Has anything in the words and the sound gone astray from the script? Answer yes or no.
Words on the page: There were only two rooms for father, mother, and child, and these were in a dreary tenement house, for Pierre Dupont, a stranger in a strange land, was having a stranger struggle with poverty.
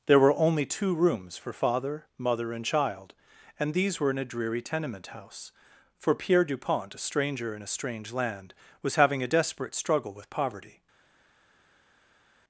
yes